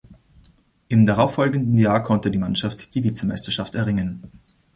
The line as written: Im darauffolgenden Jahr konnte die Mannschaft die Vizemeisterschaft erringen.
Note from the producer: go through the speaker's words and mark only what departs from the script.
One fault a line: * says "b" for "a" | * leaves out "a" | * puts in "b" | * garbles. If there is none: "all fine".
all fine